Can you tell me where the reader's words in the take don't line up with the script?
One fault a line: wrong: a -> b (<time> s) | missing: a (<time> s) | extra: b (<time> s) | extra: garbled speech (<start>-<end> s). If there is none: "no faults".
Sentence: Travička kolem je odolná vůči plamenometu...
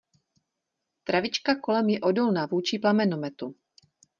no faults